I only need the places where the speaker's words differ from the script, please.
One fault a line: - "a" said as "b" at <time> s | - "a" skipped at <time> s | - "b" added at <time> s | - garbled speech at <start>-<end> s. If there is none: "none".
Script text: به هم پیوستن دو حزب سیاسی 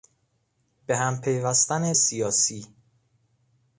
- "دو حزب" skipped at 1.9 s